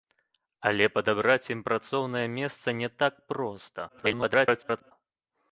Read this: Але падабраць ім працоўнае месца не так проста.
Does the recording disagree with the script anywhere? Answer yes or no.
yes